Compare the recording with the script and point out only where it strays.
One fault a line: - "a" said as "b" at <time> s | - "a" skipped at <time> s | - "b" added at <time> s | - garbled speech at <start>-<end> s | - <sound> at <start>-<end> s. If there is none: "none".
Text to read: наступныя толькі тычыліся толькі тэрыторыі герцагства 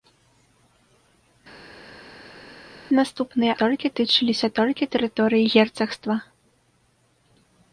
none